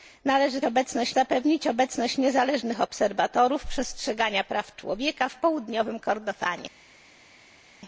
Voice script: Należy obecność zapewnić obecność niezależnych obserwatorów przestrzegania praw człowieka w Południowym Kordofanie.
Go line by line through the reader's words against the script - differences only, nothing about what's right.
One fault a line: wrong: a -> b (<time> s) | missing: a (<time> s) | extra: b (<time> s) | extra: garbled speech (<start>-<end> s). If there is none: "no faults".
no faults